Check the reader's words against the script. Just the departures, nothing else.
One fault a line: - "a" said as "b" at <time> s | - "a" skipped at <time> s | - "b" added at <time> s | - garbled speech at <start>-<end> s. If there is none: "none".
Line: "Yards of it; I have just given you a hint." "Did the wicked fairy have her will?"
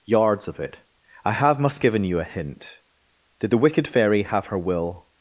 - "just" said as "must" at 1.6 s